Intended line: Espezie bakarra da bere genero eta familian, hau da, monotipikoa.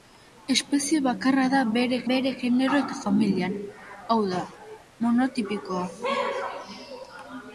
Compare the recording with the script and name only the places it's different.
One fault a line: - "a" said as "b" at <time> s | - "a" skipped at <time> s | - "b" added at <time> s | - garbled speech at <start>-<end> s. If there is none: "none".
- "bere" added at 2.1 s